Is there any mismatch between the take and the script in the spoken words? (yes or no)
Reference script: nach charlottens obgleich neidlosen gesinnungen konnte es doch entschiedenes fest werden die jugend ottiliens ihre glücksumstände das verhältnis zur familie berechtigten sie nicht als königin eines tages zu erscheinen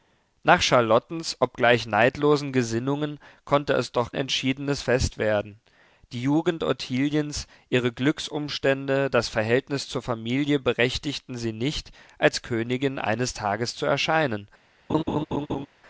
no